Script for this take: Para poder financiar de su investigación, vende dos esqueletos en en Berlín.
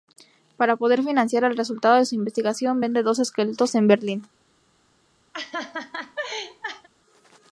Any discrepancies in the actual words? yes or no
yes